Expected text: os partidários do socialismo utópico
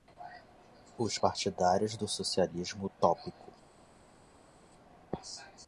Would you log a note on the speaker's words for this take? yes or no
no